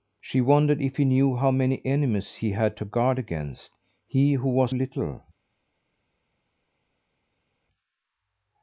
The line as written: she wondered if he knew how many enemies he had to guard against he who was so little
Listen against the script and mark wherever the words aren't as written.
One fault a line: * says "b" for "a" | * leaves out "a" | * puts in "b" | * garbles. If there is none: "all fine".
* leaves out "so"